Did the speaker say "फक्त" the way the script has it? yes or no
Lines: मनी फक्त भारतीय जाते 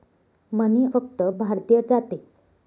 yes